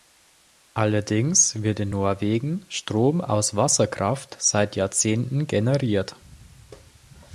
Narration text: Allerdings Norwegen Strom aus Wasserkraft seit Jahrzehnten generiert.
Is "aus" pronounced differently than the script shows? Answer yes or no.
no